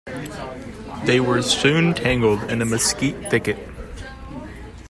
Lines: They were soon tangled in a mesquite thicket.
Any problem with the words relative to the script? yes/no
no